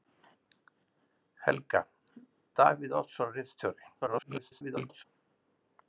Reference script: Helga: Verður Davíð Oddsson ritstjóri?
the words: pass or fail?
fail